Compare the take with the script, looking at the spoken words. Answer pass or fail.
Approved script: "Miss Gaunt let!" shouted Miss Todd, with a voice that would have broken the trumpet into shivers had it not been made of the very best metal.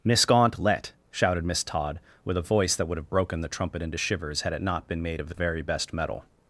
pass